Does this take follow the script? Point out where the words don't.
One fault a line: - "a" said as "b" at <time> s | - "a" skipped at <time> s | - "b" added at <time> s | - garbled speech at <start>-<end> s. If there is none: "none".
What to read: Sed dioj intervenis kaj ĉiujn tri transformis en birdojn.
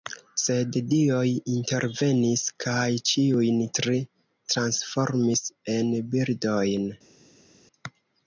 none